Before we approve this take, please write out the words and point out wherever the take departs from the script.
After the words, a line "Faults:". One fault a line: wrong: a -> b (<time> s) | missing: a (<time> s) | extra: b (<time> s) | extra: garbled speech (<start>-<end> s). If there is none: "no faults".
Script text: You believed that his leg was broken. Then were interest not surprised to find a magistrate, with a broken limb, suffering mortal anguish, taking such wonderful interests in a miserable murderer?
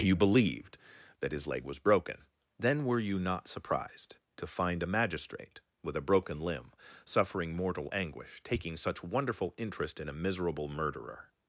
You believed that his leg was broken. Then were you not surprised to find a magistrate, with a broken limb, suffering mortal anguish, taking such wonderful interest in a miserable murderer?
Faults:
wrong: interest -> you (3.0 s)
wrong: interests -> interest (9.6 s)